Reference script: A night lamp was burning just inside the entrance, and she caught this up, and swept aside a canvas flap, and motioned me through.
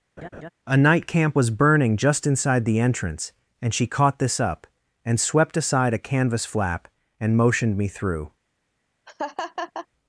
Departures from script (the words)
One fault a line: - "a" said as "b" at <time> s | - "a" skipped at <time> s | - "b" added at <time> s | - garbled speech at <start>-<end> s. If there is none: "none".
- "lamp" said as "camp" at 1.1 s